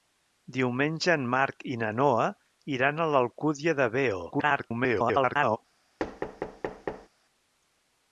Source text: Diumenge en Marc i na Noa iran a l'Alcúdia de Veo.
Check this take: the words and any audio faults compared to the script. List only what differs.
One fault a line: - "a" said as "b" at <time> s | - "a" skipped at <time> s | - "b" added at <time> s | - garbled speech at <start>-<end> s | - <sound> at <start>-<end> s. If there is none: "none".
- garbled speech at 4.3-5.6 s
- thud at 6.0-7.1 s